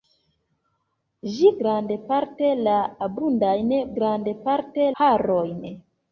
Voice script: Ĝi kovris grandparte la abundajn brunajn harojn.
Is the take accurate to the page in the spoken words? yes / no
no